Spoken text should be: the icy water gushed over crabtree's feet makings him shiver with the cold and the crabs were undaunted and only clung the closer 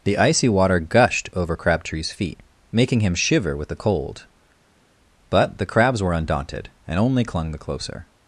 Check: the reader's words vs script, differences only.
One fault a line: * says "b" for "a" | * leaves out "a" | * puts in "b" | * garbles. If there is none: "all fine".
* says "making" for "makings"
* says "but" for "and"